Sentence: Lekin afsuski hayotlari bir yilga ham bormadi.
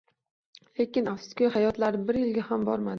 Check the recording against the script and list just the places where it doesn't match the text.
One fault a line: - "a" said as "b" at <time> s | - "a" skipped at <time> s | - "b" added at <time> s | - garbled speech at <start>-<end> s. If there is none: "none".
none